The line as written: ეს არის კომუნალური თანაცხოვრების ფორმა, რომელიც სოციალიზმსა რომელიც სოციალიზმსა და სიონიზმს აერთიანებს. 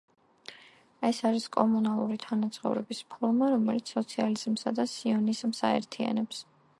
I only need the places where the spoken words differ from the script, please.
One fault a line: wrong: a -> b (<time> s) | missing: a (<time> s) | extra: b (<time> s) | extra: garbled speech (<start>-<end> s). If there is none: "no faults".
missing: რომელიც სოციალიზმსა (4.7 s)